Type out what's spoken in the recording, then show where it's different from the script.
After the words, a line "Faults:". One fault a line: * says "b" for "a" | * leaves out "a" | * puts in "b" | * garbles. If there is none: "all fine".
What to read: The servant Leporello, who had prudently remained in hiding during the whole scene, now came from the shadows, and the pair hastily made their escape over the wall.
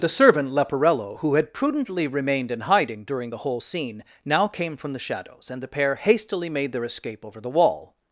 The servant Leporello, who had prudently remained in hiding during the whole scene, now came from the shadows, and the pair hastily made their escape over the wall.
Faults:
all fine